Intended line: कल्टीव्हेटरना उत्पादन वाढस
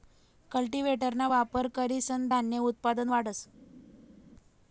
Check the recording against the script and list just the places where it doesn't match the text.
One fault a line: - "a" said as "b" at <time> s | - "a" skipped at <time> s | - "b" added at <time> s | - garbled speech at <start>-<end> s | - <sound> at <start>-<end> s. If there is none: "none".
- "वापर करीसन धान्य" added at 1.3 s